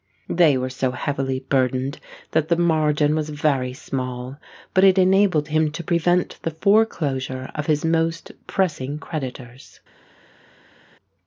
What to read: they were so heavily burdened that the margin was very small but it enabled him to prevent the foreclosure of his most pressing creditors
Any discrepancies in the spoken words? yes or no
no